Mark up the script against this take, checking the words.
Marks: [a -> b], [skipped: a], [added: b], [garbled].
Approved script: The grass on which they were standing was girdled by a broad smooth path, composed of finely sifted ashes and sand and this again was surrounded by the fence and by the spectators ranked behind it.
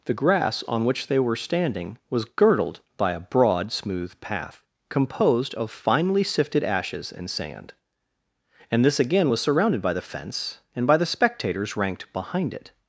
The grass on which they were standing was girdled by a broad smooth path, composed of finely sifted ashes and sand and this again was surrounded by the fence and by the spectators ranked behind it.